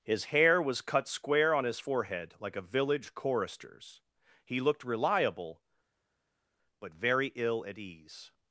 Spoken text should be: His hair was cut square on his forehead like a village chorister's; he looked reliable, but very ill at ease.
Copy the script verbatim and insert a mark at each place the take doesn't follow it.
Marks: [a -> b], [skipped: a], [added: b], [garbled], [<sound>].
His hair was cut square on his forehead like a village chorister's; he looked reliable, but very ill at ease.